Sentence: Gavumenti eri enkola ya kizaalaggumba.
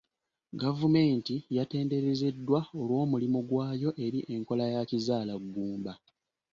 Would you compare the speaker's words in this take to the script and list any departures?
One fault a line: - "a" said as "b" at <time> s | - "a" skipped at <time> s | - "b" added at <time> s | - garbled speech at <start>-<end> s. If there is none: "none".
- "yatenderezeddwa olw'omulimu gwayo" added at 1.6 s